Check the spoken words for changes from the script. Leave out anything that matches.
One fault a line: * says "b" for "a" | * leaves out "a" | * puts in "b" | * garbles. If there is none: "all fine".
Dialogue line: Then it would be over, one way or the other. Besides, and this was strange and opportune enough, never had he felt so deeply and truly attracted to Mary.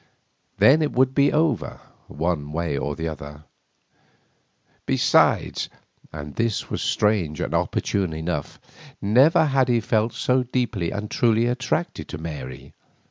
all fine